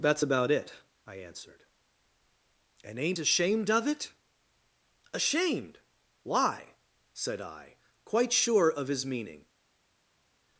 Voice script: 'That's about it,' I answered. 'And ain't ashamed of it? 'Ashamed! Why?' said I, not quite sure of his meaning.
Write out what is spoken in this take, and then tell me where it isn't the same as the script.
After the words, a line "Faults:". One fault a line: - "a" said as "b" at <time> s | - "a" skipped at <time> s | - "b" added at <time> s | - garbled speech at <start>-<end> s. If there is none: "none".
'That's about it,' I answered. 'And ain't ashamed of it? 'Ashamed! Why?' said I, quite sure of his meaning.
Faults:
- "not" skipped at 7.8 s